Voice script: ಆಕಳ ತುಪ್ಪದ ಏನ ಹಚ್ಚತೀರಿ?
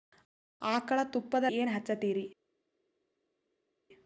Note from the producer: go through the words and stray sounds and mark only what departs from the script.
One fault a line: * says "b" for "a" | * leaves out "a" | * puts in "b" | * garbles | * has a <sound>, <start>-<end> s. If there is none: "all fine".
all fine